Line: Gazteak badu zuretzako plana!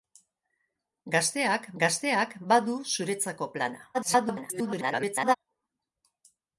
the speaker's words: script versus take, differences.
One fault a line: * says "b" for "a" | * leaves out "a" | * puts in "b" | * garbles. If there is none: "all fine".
* puts in "gazteak"
* garbles